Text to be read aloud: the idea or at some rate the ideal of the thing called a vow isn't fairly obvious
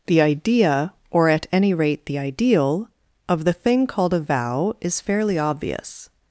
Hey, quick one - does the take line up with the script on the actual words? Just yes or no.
no